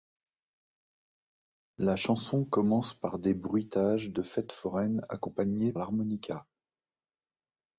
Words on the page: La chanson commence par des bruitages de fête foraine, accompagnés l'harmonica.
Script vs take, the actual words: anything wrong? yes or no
no